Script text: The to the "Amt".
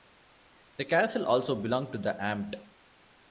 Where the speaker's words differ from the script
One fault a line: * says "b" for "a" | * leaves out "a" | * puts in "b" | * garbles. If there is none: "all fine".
* puts in "castle also belonged"